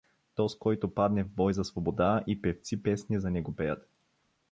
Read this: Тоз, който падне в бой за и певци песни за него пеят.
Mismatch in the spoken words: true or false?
true